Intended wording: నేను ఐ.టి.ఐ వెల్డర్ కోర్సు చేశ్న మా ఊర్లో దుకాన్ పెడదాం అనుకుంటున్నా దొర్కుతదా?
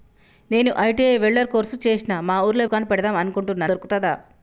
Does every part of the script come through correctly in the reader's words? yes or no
yes